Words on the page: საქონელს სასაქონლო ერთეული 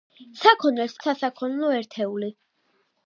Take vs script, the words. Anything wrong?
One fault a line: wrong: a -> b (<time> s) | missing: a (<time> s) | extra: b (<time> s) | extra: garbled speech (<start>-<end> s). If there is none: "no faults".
no faults